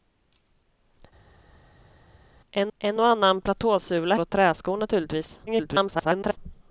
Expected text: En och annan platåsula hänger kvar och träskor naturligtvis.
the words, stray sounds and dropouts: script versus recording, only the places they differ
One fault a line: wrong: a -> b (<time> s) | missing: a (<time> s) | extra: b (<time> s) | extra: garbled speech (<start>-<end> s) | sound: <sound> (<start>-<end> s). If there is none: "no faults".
extra: en (2.8 s)
missing: hänger kvar (4.1 s)
extra: garbled speech (5.5-6.4 s)